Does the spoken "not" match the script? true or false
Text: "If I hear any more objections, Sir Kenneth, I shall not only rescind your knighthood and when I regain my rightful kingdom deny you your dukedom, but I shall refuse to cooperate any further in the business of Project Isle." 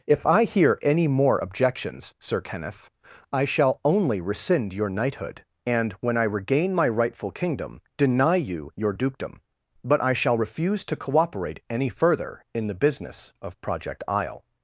false